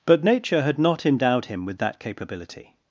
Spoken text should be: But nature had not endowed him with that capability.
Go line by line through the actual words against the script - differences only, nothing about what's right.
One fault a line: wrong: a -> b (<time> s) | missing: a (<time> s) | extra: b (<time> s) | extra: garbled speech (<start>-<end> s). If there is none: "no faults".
no faults